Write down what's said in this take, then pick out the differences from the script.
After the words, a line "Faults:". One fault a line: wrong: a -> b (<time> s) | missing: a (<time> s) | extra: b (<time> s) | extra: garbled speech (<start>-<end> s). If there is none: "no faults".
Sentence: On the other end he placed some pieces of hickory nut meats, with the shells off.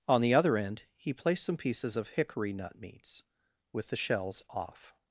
On the other end he placed some pieces of hickory nut meats, with the shells off.
Faults:
no faults